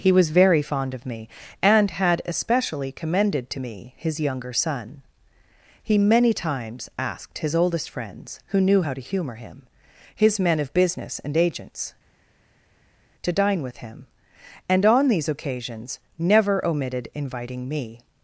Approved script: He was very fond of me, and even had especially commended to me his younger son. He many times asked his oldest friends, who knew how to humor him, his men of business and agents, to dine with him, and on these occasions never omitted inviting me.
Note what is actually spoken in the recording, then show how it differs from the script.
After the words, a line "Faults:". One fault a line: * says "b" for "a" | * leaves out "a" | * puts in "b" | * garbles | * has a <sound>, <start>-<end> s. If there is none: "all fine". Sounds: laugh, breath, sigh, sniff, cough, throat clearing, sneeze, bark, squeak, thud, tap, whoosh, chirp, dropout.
He was very fond of me, and had especially commended to me his younger son. He many times asked his oldest friends, who knew how to humor him, his men of business and agents, to dine with him, and on these occasions never omitted inviting me.
Faults:
* leaves out "even"